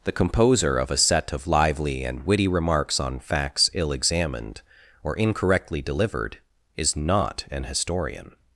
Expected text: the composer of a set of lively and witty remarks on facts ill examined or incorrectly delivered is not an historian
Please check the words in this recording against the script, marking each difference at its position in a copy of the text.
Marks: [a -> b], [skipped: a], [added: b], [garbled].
the composer of a set of lively and witty remarks on facts ill examined or incorrectly delivered is not an historian